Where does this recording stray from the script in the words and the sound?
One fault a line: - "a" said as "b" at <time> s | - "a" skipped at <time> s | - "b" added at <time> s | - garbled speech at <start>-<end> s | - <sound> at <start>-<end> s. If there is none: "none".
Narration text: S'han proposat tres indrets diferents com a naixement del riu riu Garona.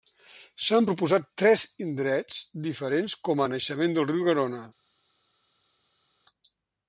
- "riu" skipped at 4.3 s